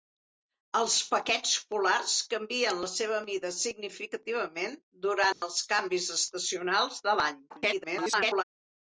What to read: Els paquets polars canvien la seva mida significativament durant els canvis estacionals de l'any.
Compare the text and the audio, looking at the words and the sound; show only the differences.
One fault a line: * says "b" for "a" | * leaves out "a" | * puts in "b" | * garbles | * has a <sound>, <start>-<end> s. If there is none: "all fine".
* has a dropout, 5.3-5.4 s
* garbles